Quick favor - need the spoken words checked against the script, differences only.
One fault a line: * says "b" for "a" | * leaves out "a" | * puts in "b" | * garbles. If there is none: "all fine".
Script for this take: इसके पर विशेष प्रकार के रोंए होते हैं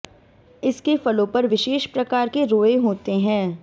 * puts in "फलों"